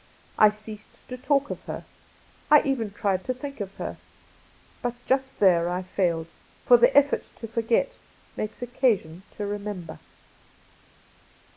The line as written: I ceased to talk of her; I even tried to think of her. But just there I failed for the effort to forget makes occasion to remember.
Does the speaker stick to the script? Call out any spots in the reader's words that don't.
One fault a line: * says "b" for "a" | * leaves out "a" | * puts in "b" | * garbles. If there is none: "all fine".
all fine